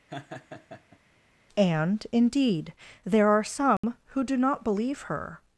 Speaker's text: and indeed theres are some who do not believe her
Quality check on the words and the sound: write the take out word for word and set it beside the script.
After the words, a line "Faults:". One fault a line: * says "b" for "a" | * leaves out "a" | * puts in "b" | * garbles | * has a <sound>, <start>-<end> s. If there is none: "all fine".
and indeed there are some who do not believe her
Faults:
* has a laugh, 0.1-1.0 s
* says "there" for "theres"
* has a dropout, 3.8-3.8 s